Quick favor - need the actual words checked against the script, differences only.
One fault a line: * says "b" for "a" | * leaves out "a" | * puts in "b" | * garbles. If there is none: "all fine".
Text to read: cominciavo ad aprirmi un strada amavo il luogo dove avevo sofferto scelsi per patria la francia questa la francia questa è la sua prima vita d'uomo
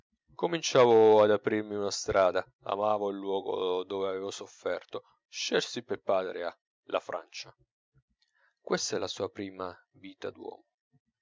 * says "una" for "un"
* leaves out "la francia questa"